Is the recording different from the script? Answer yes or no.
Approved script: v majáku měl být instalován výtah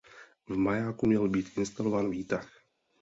no